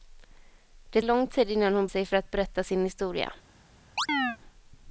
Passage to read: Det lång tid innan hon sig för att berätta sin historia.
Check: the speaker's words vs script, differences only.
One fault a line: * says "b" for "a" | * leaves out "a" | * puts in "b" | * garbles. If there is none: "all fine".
all fine